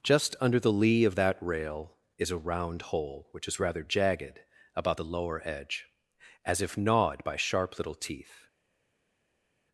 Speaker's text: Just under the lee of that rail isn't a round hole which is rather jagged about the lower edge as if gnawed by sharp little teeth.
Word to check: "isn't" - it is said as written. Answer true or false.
false